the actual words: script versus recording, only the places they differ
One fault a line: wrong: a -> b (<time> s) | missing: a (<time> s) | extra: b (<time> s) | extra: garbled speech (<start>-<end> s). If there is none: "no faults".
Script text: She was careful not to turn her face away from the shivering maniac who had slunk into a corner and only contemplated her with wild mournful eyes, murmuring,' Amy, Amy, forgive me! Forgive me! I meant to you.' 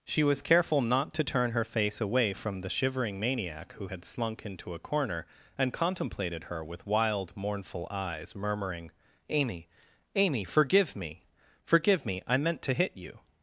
missing: only (5.7 s)
extra: hit (12.7 s)